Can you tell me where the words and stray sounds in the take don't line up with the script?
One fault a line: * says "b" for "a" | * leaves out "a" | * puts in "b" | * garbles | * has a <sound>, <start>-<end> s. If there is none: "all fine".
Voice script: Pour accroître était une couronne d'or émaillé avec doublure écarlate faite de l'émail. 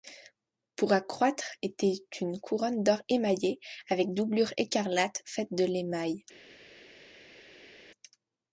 all fine